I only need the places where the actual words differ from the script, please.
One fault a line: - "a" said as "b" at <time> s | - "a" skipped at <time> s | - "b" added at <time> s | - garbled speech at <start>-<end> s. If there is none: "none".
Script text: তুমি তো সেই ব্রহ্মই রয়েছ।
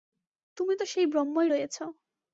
none